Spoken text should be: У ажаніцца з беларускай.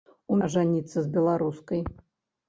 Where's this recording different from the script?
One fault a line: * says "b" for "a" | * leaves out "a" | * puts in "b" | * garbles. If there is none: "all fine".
all fine